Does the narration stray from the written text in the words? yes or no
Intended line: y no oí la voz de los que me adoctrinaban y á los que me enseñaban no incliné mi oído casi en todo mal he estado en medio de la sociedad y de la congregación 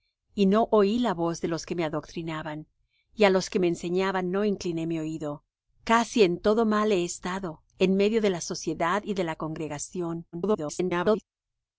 yes